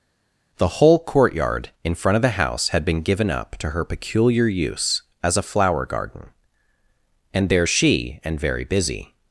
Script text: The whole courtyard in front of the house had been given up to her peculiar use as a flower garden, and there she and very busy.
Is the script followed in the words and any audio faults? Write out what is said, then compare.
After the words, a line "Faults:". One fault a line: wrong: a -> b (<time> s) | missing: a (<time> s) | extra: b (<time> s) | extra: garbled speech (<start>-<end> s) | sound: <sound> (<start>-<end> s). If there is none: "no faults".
The whole courtyard in front of the house had been given up to her peculiar use as a flower garden, and there she and very busy.
Faults:
no faults